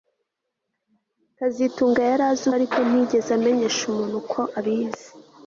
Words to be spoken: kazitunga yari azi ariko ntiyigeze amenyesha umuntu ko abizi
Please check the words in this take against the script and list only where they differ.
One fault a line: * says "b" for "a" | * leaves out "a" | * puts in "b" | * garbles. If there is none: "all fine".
all fine